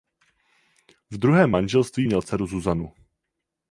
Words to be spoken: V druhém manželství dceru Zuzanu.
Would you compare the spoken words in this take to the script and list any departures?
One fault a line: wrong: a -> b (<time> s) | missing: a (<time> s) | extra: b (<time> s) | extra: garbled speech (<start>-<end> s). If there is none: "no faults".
extra: měl (2.0 s)